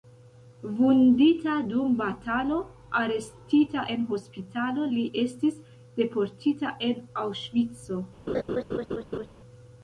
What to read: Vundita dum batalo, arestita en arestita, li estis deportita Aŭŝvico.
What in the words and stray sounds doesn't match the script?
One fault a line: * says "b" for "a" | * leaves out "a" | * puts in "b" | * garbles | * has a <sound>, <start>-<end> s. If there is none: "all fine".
* says "hospitalo" for "arestita"
* puts in "en"
* has a laugh, 8.3-9.3 s